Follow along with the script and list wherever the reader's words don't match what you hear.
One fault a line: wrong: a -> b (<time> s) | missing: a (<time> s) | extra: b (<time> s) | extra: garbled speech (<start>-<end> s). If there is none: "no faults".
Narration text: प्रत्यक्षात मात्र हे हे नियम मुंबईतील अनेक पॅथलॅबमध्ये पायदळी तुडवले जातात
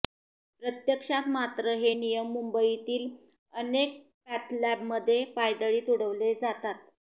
missing: हे (1.9 s)